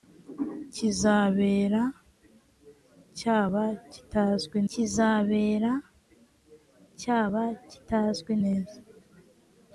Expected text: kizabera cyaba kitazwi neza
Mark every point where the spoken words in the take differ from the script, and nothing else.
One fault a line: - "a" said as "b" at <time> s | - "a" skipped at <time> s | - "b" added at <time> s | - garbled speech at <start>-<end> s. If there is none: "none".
- "kizabera cyaba kitazwi" added at 4.7 s